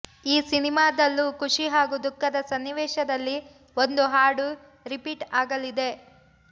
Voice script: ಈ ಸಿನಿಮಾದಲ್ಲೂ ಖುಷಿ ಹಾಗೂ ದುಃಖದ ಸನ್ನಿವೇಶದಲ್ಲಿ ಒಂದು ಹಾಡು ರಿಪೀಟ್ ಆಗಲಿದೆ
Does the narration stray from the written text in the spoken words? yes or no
no